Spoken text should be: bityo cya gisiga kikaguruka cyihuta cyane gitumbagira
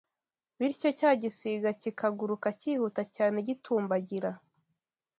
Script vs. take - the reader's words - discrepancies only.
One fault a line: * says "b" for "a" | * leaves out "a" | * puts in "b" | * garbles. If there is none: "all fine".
all fine